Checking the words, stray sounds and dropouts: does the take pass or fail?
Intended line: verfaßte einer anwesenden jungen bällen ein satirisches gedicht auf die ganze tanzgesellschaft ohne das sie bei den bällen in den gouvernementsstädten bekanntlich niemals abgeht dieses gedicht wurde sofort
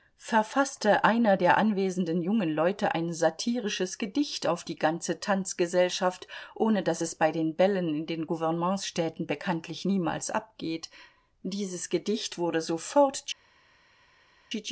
fail